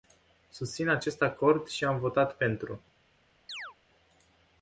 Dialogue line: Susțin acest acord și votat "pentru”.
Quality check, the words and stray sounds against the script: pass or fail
fail